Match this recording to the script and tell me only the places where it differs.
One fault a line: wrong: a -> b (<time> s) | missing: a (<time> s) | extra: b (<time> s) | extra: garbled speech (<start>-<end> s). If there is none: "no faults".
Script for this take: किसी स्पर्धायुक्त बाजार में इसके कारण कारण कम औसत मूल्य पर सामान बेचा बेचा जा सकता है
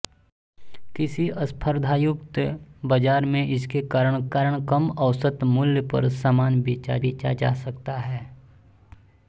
no faults